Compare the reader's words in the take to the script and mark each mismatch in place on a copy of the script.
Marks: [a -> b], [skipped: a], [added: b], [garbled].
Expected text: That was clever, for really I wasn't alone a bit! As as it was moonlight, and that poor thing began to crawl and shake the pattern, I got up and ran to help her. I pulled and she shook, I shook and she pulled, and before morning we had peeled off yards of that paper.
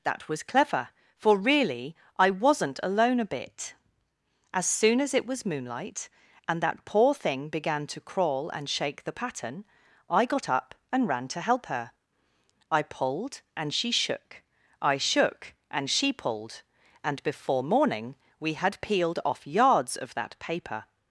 That was clever, for really I wasn't alone a bit! As [added: soon] as it was moonlight, and that poor thing began to crawl and shake the pattern, I got up and ran to help her. I pulled and she shook, I shook and she pulled, and before morning we had peeled off yards of that paper.